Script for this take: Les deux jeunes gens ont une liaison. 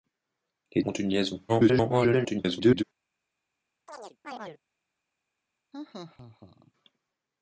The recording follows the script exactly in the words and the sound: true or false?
false